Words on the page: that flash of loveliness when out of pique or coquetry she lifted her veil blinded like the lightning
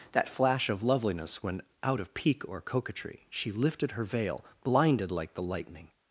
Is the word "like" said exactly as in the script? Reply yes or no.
yes